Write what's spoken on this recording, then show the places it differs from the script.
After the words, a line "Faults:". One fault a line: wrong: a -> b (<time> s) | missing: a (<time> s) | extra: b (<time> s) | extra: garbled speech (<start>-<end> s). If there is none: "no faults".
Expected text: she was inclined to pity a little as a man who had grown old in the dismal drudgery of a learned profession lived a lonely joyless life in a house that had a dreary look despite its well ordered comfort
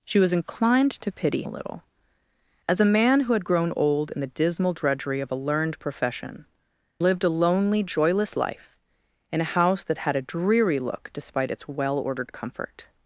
she was inclined to pity a little as a man who had grown old in the dismal drudgery of a learned profession lived a lonely joyless life in a house that had a dreary look despite its well ordered comfort
Faults:
no faults